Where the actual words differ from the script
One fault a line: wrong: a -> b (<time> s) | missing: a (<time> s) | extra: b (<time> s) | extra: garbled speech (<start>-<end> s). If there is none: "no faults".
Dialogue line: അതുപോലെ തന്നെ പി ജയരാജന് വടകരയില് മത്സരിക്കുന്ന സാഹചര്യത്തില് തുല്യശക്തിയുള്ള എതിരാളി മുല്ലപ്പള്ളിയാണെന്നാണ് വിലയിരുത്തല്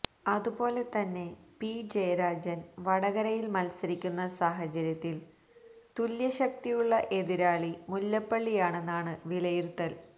no faults